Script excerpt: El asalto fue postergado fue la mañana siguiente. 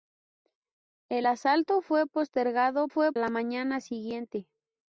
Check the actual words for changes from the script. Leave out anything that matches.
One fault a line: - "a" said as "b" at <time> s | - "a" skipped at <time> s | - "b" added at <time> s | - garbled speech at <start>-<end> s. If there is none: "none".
none